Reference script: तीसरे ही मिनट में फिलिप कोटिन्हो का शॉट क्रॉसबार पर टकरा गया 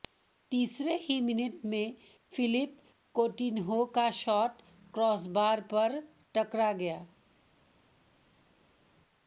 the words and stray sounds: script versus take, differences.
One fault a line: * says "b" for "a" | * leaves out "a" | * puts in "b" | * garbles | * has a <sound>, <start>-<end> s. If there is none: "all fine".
all fine